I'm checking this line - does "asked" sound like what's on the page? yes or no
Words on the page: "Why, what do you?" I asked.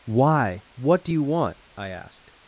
yes